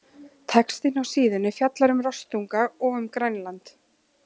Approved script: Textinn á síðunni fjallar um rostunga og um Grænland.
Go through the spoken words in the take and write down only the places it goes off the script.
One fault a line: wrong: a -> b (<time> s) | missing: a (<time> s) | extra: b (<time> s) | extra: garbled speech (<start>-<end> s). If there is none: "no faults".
no faults